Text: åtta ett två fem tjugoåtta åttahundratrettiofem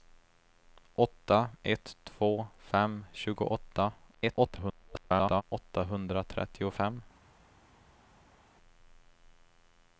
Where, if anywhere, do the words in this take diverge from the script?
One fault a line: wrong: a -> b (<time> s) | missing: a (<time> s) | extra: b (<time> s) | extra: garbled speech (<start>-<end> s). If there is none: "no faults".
extra: garbled speech (4.1-5.4 s)